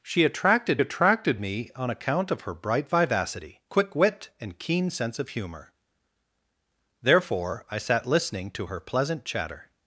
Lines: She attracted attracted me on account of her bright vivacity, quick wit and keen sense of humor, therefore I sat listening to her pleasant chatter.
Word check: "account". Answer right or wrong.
right